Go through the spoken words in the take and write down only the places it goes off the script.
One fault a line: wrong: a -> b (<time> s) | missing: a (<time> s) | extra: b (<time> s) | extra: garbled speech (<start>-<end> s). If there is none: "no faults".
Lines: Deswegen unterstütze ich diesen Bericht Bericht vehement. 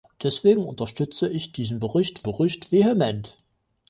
no faults